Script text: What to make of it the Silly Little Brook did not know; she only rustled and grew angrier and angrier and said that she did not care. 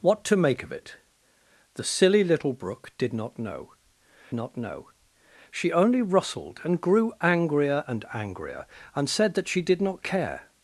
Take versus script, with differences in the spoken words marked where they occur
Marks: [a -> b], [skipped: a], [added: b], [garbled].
What to make of it the Silly Little Brook did not know; [added: not know] she only rustled and grew angrier and angrier and said that she did not care.